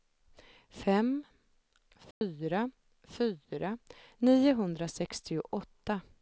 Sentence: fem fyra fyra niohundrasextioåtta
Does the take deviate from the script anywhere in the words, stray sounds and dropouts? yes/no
yes